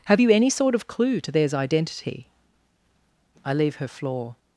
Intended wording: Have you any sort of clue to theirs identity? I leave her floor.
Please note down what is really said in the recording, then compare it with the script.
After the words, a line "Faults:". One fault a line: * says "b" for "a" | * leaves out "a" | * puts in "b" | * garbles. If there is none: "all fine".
Have you any sort of clue to theirs identity? I leave her floor.
Faults:
all fine